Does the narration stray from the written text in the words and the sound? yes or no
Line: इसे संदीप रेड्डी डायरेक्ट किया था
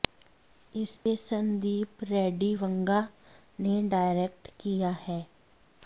yes